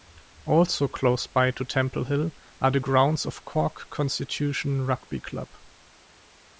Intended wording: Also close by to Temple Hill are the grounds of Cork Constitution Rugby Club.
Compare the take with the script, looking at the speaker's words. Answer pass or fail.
pass